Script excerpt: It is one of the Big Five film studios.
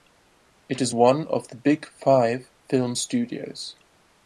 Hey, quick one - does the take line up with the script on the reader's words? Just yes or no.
yes